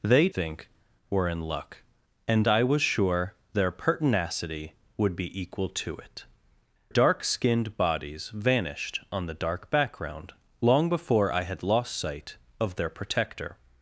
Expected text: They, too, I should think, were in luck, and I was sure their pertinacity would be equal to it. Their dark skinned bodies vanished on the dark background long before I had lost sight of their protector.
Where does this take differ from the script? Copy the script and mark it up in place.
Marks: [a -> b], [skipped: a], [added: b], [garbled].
They, [skipped: too, I should] think, were in luck, and I was sure their pertinacity would be equal to it. [skipped: Their] dark skinned bodies vanished on the dark background long before I had lost sight of their protector.